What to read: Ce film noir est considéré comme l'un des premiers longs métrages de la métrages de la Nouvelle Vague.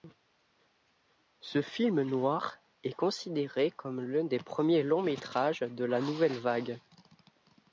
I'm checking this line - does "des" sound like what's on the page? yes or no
yes